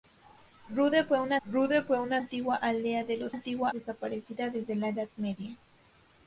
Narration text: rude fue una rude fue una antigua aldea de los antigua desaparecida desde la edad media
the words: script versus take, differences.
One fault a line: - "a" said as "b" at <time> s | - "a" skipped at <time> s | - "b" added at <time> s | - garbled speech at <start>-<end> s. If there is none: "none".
none